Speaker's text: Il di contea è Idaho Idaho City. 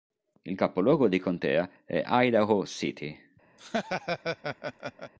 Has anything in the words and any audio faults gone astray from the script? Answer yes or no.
yes